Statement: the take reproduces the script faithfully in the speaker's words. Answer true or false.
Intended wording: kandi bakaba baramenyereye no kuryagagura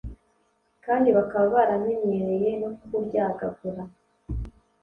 true